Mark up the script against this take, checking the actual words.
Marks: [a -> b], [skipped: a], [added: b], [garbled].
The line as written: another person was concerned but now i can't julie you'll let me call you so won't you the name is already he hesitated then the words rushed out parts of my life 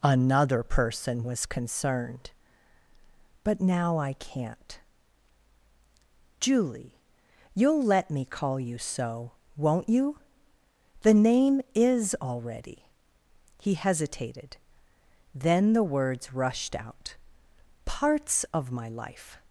another person was concerned but now i can't julie you'll let me call you so won't you the name is already he hesitated then the words rushed out parts of my life